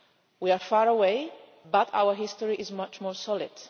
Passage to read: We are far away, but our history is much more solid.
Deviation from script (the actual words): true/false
false